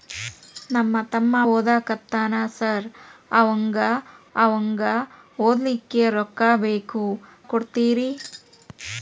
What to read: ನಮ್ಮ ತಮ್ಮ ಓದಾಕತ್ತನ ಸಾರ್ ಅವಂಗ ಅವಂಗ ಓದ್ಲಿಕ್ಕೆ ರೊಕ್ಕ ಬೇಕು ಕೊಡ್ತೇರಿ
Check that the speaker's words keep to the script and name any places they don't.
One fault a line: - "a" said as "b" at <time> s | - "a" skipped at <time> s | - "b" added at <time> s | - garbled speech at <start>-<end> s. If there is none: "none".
none